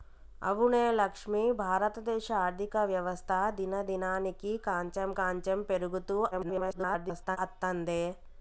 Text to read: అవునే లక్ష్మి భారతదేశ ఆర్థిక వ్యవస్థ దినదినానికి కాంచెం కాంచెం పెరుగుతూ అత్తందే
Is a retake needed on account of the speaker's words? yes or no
yes